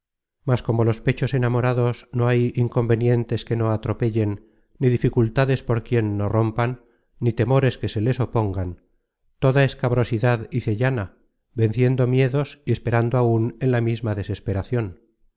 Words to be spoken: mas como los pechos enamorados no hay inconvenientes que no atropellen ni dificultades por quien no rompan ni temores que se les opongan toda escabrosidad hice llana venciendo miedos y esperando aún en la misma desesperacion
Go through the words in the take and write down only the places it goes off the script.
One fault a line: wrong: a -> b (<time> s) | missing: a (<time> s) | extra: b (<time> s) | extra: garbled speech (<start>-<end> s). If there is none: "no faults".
no faults